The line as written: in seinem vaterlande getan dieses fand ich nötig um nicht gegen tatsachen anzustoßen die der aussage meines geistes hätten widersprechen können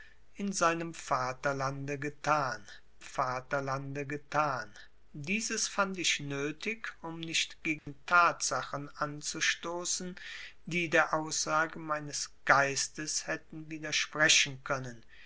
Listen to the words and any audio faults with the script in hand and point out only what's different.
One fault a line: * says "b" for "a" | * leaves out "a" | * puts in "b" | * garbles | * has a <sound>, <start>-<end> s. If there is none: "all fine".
* puts in "vaterlande getan"
* has a dropout, 7.8-7.9 s